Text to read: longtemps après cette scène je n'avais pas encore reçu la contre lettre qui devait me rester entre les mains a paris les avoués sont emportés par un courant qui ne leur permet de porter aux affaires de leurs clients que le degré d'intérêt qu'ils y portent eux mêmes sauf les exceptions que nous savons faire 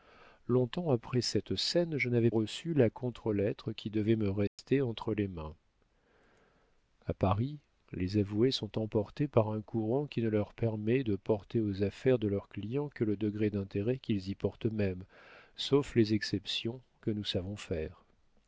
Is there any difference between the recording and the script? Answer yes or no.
yes